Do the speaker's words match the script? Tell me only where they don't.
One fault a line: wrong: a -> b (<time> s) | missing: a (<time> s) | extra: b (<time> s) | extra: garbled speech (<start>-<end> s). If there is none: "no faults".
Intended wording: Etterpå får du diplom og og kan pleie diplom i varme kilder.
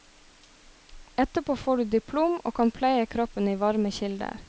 missing: og (2.5 s)
wrong: diplom -> kroppen (3.0 s)